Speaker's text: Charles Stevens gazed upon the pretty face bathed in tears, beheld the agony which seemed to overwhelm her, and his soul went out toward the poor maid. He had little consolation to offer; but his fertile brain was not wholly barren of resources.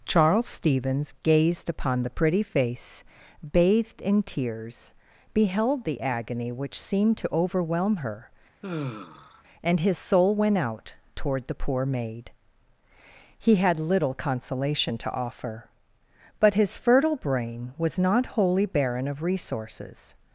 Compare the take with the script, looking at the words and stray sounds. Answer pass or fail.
fail